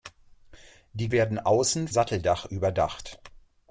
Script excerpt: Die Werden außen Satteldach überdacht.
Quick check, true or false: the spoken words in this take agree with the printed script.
true